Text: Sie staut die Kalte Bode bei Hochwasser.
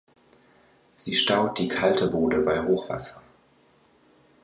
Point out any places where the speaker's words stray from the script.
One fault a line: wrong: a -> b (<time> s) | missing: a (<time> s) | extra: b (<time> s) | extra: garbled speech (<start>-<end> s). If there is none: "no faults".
no faults